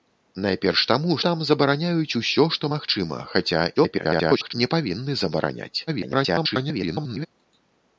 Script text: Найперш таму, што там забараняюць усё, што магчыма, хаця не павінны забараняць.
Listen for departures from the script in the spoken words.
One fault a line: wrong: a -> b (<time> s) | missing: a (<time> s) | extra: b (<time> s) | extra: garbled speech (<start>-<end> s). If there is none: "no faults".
missing: што (1.2 s)
extra: garbled speech (3.8-4.5 s)
extra: garbled speech (5.9-7.3 s)